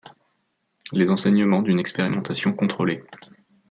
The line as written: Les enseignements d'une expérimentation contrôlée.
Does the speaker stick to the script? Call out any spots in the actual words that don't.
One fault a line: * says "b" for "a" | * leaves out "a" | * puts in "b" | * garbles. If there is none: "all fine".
all fine